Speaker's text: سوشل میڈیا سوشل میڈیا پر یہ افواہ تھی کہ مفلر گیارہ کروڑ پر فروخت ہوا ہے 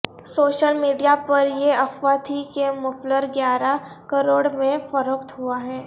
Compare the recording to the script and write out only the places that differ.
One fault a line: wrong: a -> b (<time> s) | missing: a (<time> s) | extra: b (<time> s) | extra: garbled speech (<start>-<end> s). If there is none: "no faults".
missing: سوشل میڈیا (1.1 s)
wrong: پر -> میں (4.5 s)